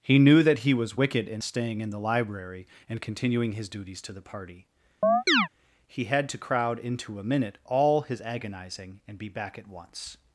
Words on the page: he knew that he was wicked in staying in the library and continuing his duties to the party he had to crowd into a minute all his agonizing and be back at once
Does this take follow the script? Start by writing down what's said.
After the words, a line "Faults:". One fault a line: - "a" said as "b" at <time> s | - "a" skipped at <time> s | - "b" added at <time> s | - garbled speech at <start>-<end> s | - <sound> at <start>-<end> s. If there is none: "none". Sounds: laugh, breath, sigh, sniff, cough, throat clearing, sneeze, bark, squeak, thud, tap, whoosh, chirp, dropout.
he knew that he was wicked in staying in the library and continuing his duties to the party he had to crowd into a minute all his agonizing and be back at once
Faults:
- chirp at 5.0-5.5 s